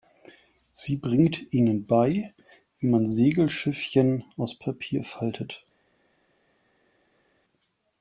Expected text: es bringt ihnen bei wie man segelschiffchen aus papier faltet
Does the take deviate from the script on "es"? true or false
true